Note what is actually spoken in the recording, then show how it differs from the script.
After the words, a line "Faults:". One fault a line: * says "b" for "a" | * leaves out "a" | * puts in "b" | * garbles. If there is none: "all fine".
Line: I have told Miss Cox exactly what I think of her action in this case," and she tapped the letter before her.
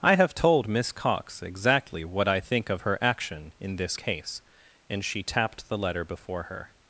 I have told Miss Cox exactly what I think of her action in this case," and she tapped the letter before her.
Faults:
all fine